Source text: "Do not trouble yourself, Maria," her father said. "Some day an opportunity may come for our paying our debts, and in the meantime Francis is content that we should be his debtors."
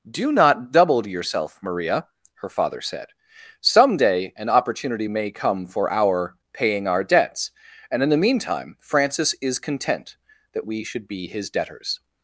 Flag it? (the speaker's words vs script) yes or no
yes